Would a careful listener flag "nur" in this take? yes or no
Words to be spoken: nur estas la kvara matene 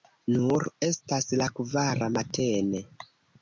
no